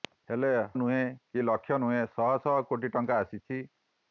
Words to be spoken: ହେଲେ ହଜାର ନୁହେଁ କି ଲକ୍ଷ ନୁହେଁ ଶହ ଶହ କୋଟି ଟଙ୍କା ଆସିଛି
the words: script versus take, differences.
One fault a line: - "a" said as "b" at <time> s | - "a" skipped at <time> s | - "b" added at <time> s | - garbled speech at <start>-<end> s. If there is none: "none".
- "ହଜାର" skipped at 0.5 s